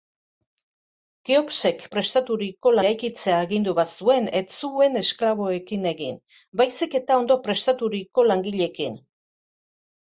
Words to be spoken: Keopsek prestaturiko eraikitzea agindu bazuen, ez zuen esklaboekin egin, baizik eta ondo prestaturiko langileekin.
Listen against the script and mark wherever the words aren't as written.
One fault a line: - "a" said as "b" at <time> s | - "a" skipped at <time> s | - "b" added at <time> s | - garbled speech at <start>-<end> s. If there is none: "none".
none